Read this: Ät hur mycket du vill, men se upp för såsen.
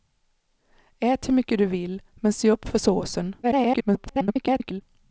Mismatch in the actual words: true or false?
true